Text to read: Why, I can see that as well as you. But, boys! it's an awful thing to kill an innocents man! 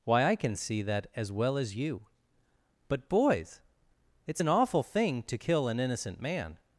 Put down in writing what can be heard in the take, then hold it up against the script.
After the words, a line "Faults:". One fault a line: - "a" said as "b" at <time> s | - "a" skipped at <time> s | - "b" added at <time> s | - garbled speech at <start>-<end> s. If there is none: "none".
Why, I can see that as well as you. But, boys! it's an awful thing to kill an innocent man!
Faults:
- "innocents" said as "innocent" at 5.8 s